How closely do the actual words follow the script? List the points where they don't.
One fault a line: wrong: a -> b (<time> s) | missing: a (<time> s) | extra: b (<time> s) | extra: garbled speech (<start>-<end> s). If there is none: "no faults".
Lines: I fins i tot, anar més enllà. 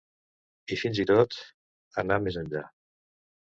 no faults